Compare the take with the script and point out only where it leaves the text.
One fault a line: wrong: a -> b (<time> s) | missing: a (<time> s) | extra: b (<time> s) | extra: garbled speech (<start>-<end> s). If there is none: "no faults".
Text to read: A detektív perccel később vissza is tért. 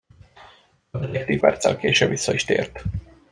no faults